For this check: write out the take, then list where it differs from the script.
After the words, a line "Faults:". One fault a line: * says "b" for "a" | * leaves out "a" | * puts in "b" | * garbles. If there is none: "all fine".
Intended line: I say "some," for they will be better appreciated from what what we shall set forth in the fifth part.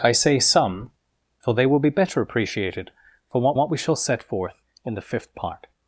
I say "some," for they will be better appreciated from what what we shall set forth in the fifth part.
Faults:
all fine